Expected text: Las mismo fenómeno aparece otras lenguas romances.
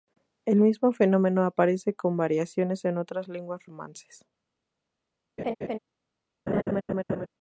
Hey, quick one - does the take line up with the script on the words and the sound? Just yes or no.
no